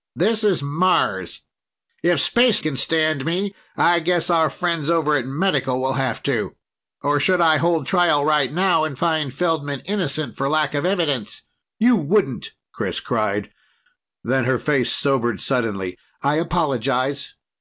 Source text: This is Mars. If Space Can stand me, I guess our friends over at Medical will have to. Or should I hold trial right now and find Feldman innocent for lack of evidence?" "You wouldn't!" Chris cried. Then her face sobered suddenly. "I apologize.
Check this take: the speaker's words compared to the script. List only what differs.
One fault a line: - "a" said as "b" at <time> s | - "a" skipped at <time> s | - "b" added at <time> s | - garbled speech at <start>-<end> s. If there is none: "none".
none